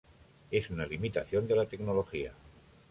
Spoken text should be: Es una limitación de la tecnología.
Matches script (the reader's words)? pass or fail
pass